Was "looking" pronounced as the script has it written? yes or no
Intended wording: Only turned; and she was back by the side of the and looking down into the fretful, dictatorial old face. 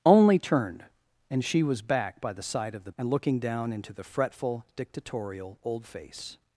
yes